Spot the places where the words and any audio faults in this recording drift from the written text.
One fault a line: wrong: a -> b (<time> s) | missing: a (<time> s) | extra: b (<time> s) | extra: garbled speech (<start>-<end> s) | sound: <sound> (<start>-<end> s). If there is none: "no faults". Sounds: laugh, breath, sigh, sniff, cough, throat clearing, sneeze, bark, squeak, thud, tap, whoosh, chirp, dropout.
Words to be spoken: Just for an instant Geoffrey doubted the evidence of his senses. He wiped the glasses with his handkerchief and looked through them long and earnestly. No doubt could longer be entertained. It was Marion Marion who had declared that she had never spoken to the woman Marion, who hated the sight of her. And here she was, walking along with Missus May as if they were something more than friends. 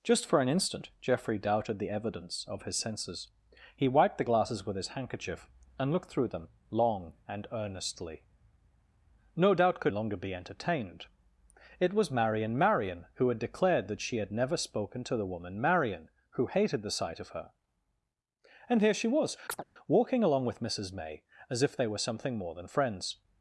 sound: chirp (19.5-19.6 s)